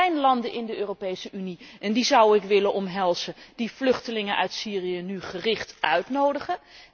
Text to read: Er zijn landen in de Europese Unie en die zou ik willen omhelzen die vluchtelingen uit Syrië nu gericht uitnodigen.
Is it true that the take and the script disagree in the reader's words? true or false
false